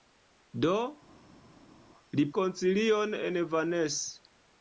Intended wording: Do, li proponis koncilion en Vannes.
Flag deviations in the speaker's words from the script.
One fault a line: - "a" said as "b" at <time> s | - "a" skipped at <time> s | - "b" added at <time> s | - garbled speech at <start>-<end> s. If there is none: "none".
- "proponis" skipped at 2.2 s